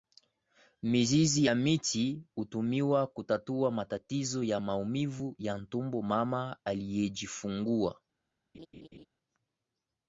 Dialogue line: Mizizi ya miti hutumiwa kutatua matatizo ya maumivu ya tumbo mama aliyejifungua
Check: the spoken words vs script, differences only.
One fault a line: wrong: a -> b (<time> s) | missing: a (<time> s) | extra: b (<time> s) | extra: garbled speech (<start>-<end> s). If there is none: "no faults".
no faults